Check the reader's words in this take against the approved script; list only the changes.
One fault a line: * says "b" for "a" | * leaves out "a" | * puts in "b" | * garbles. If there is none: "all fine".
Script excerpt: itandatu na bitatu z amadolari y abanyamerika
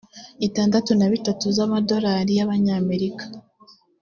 all fine